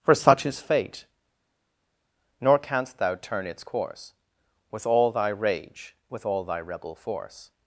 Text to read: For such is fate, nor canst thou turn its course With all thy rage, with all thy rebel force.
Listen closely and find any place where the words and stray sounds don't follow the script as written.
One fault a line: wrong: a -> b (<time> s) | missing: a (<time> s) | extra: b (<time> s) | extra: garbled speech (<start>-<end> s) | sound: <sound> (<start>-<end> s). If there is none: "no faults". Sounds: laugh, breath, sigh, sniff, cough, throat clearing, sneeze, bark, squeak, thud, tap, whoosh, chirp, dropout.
no faults